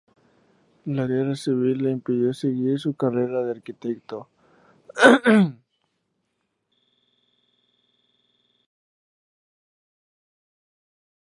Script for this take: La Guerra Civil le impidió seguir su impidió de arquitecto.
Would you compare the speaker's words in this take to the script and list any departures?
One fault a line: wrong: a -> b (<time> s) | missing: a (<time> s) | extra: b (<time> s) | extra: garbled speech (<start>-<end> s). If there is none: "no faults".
wrong: impidió -> carrera (2.9 s)